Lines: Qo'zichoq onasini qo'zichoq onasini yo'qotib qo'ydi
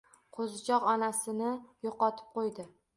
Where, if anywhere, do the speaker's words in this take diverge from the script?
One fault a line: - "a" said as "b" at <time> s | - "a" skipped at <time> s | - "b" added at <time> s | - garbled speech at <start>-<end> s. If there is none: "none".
- "qo'zichoq onasini" skipped at 1.5 s